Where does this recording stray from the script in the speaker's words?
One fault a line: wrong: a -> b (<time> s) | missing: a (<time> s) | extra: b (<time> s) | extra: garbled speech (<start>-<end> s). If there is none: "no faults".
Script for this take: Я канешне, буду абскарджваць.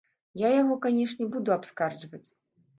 extra: яго (0.6 s)